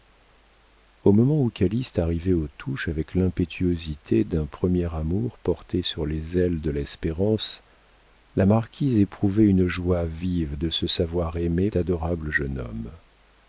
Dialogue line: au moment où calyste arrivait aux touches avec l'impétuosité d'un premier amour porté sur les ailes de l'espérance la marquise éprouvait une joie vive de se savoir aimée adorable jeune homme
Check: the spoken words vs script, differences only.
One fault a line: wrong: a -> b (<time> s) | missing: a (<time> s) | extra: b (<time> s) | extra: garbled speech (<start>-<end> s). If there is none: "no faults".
no faults